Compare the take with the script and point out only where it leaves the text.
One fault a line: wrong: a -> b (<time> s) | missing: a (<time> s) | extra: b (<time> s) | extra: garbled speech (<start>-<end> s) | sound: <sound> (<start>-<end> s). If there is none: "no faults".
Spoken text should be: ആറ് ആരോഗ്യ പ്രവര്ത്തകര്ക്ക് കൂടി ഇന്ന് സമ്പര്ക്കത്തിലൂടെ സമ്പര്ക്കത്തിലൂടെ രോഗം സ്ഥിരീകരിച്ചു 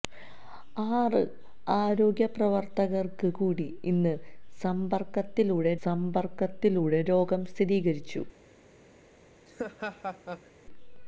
sound: laugh (9.5-10.5 s)